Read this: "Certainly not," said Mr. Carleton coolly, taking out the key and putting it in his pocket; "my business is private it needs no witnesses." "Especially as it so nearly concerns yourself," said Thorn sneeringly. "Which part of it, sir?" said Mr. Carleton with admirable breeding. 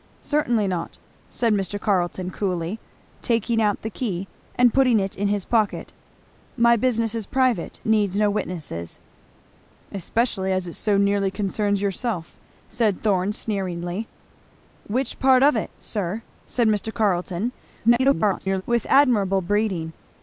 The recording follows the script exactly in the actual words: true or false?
false